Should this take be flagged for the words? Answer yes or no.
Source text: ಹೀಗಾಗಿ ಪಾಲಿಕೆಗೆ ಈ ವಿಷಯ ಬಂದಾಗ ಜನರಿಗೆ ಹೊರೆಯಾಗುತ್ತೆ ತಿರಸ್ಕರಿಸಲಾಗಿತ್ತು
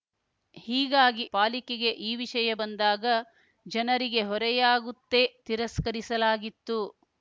no